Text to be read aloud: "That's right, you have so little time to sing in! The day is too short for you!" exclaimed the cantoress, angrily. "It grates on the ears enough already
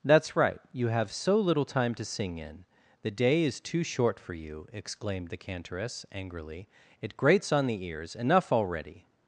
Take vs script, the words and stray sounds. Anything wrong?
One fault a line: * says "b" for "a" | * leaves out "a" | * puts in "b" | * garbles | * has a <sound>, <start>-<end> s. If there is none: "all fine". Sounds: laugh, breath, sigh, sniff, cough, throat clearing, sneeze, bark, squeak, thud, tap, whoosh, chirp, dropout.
all fine